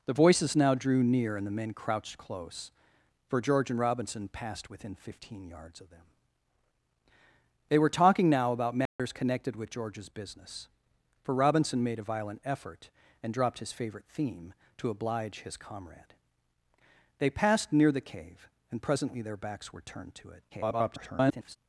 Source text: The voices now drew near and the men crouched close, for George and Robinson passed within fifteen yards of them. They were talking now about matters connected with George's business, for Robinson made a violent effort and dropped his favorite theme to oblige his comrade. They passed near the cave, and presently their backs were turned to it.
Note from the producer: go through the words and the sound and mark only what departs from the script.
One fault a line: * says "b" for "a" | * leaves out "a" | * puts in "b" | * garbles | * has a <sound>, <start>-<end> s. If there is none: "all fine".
* has a dropout, 8.9-9.0 s
* garbles